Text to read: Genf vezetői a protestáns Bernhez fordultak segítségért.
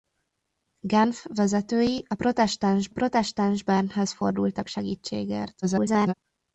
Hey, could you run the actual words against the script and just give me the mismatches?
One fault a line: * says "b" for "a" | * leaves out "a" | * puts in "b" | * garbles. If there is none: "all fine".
* puts in "protestáns"
* garbles